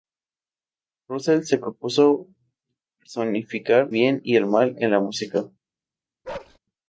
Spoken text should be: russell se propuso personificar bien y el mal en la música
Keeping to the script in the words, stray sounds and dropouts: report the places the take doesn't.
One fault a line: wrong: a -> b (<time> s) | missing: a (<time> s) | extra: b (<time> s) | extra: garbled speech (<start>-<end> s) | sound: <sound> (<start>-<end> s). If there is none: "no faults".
sound: bark (6.2-6.6 s)